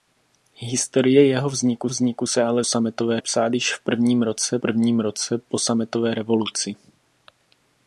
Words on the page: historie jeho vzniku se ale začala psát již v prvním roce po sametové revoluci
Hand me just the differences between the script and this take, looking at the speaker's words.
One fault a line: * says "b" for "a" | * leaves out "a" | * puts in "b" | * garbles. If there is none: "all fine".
* puts in "vzniku"
* says "sametové" for "začala"
* puts in "prvním roce"